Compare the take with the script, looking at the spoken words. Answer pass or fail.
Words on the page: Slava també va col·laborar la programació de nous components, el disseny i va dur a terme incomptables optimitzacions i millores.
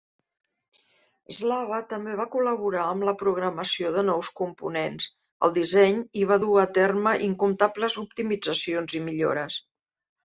fail